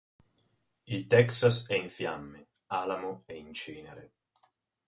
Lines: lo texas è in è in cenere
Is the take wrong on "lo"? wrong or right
wrong